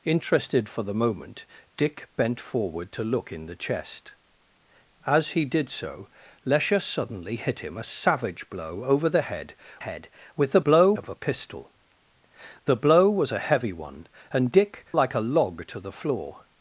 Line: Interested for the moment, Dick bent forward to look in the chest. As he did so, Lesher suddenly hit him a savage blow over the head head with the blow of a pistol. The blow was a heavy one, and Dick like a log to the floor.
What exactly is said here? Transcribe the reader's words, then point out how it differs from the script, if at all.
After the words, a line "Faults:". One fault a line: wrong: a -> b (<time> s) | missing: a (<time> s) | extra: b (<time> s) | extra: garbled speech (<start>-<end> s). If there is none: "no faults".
Interested for the moment, Dick bent forward to look in the chest. As he did so, Lesher suddenly hit him a savage blow over the head head with the blow of a pistol. The blow was a heavy one, and Dick like a log to the floor.
Faults:
no faults